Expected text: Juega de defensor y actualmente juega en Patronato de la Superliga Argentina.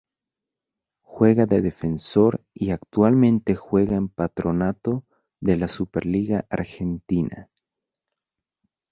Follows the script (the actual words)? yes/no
yes